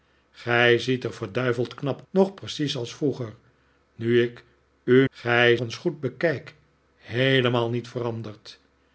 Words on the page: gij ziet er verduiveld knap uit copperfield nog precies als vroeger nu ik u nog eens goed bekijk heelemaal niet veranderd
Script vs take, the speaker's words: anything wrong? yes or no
yes